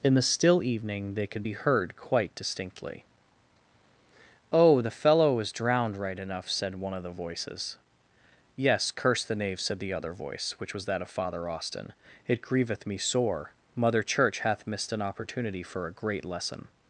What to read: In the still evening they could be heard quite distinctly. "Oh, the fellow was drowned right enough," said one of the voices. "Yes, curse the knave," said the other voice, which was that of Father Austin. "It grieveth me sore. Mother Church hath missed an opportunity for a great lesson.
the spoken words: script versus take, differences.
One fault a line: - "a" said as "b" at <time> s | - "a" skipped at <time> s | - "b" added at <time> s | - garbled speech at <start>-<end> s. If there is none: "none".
none